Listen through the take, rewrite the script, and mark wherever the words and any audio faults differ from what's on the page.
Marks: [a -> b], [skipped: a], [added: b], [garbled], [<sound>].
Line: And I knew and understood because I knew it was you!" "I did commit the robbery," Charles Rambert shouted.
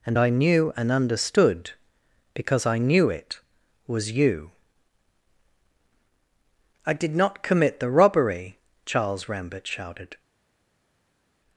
And I knew and understood because I knew it was you!" "I did [added: not] commit the robbery," Charles Rambert shouted.